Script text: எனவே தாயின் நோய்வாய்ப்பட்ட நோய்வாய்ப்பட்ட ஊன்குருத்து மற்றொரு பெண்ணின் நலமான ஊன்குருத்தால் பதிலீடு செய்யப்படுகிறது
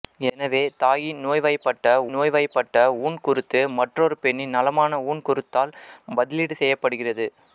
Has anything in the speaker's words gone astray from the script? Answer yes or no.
no